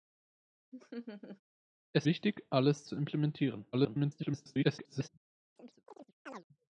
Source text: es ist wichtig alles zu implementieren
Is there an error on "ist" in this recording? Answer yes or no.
yes